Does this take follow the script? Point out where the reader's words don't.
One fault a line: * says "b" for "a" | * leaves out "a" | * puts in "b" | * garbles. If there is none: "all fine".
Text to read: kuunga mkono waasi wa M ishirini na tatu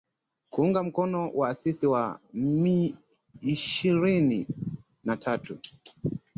all fine